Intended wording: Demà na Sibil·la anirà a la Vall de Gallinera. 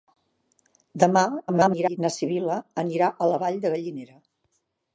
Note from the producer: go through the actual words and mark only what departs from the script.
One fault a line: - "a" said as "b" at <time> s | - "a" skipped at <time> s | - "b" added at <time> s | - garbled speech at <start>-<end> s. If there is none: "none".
- garbled speech at 1.5-2.0 s